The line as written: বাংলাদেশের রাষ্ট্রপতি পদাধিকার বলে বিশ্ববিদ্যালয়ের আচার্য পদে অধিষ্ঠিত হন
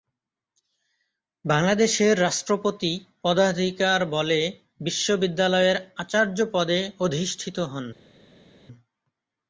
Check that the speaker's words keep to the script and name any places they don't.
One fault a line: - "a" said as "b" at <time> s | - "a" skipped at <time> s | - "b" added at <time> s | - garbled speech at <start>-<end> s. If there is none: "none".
none